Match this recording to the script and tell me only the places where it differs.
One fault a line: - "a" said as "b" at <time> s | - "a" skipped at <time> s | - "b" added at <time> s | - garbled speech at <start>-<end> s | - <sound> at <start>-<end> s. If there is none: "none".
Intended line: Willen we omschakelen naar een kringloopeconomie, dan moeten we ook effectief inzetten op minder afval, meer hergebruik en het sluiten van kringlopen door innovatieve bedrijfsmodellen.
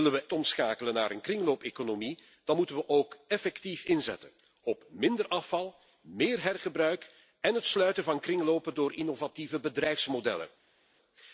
none